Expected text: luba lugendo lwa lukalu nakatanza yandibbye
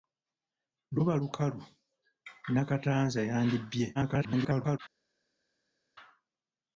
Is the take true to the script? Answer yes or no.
no